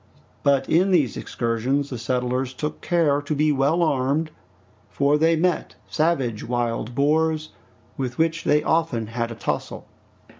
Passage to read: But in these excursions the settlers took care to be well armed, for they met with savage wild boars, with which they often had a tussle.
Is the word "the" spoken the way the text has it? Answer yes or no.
yes